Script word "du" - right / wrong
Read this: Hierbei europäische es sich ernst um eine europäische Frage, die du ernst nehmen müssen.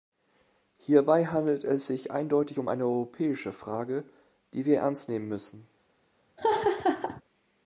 wrong